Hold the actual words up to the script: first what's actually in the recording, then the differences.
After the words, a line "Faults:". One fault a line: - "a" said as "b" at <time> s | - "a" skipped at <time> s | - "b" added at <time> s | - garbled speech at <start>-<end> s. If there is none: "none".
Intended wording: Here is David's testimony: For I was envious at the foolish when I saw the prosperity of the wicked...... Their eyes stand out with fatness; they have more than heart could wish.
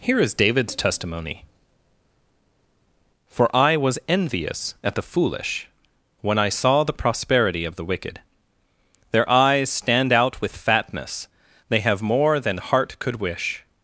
Here is David's testimony: For I was envious at the foolish when I saw the prosperity of the wicked...... Their eyes stand out with fatness; they have more than heart could wish.
Faults:
none